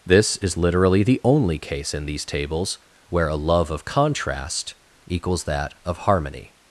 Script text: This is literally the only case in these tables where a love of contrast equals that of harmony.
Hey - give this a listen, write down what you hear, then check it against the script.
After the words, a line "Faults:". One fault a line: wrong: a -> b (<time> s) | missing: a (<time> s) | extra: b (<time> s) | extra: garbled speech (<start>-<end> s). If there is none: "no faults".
This is literally the only case in these tables where a love of contrast equals that of harmony.
Faults:
no faults